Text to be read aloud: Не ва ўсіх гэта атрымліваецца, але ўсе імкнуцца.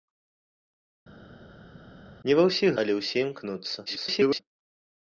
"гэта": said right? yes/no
no